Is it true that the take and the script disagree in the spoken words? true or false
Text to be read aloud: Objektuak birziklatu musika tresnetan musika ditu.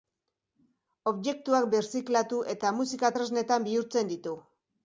true